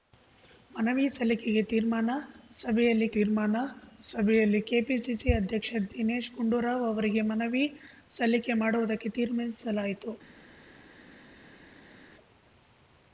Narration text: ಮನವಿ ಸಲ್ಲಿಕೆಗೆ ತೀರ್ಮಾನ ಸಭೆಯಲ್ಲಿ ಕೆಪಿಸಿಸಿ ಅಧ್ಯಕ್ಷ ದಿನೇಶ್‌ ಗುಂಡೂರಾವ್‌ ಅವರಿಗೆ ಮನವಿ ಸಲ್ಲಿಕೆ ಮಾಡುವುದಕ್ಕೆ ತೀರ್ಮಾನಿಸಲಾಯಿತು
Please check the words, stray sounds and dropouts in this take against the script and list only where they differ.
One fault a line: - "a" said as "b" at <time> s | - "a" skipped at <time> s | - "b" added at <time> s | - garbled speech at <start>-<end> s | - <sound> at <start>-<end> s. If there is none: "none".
- "ತೀರ್ಮಾನ ಸಭೆಯಲ್ಲಿ" added at 3.1 s